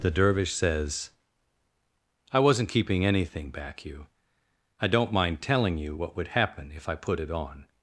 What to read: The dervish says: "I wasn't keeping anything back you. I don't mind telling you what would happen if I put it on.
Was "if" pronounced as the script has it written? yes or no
yes